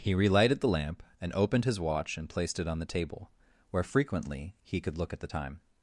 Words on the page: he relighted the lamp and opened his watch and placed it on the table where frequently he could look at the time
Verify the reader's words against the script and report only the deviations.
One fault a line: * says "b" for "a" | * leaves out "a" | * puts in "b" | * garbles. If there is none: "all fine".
all fine